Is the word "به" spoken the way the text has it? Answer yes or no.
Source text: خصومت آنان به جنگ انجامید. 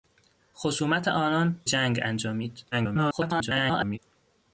no